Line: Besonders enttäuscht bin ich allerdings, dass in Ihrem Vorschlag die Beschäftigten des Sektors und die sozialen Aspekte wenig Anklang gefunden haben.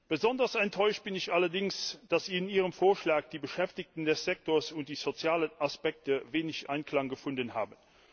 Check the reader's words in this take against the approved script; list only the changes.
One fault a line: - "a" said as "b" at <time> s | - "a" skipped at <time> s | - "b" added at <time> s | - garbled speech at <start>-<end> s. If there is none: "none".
none